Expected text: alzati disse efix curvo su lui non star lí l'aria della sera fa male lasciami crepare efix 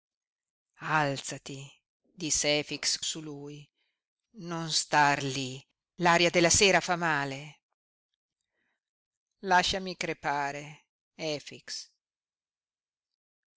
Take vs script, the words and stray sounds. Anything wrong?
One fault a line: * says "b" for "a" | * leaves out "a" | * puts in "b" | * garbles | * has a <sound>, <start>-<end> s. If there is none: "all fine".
* leaves out "curvo"